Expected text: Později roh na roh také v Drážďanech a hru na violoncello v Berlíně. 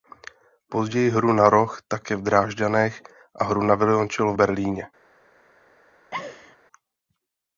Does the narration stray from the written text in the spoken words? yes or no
yes